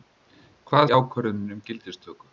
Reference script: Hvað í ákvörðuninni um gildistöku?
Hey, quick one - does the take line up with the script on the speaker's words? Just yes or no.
yes